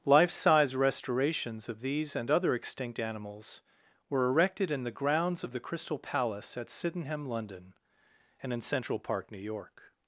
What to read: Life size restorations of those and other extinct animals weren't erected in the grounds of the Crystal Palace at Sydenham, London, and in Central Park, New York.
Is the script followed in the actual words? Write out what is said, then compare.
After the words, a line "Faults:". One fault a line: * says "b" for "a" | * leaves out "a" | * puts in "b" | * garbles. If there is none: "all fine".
Life size restorations of these and other extinct animals were erected in the grounds of the Crystal Palace at Sydenham, London, and in Central Park, New York.
Faults:
* says "these" for "those"
* says "were" for "weren't"